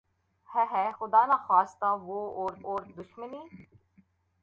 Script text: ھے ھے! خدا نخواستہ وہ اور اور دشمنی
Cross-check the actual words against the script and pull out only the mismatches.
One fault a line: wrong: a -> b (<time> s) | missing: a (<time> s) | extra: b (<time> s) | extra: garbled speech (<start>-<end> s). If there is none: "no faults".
no faults